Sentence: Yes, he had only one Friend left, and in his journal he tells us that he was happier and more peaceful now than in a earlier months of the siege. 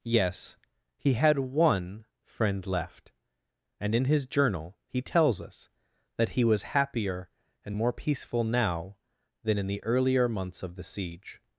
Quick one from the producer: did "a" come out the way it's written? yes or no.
no